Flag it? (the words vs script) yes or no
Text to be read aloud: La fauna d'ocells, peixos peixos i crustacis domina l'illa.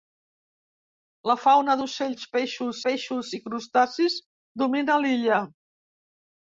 no